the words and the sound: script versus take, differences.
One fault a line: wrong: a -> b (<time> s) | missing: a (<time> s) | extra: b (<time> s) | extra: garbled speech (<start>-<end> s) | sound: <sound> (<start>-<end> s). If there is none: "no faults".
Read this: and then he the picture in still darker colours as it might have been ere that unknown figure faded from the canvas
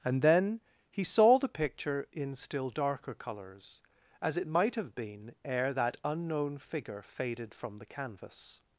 extra: saw (1.0 s)